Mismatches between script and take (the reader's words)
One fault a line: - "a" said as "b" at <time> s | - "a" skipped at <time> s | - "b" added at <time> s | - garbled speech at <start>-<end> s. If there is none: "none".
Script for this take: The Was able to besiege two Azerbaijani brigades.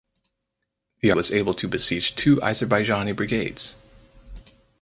none